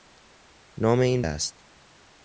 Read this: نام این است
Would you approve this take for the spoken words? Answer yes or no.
yes